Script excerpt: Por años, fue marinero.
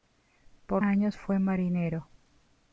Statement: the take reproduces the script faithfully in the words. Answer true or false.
true